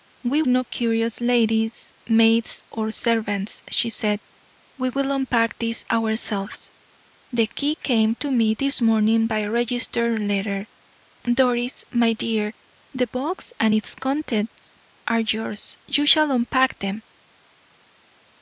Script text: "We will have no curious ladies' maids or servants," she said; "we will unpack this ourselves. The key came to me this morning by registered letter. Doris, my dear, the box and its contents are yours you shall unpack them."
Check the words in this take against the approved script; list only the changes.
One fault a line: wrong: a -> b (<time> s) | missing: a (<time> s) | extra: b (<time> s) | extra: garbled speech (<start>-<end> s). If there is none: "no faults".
missing: will have (0.4 s)